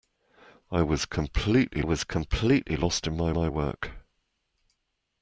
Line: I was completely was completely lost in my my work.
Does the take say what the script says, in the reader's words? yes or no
yes